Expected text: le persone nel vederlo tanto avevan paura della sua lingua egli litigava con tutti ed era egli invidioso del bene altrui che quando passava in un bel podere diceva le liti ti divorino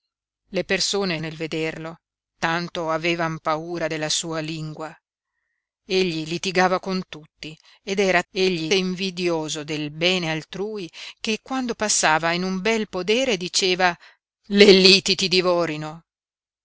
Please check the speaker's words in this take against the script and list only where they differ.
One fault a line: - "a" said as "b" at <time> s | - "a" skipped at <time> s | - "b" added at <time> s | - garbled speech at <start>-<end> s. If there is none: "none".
none